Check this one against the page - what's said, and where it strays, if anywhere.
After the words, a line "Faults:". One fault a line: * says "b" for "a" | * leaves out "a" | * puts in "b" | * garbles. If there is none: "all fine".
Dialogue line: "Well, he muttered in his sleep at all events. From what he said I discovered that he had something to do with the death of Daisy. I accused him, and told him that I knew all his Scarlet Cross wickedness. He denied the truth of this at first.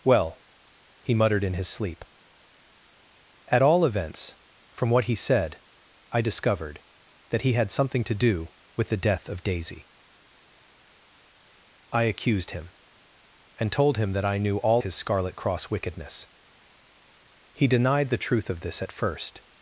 "Well, he muttered in his sleep at all events. From what he said I discovered that he had something to do with the death of Daisy. I accused him, and told him that I knew all his Scarlet Cross wickedness. He denied the truth of this at first.
Faults:
all fine